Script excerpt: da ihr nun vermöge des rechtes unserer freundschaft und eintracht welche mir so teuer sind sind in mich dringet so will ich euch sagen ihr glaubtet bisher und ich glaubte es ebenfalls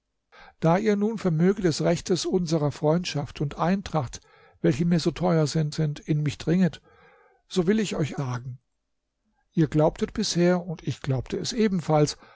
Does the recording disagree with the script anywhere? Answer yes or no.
no